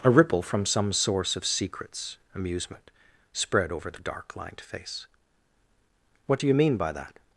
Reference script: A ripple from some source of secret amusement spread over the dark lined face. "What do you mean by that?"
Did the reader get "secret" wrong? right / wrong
wrong